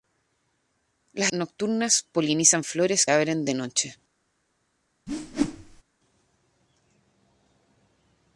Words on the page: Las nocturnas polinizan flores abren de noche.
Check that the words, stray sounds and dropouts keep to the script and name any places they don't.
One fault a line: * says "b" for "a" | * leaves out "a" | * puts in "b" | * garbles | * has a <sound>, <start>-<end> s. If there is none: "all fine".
* has a whoosh, 5.1-5.8 s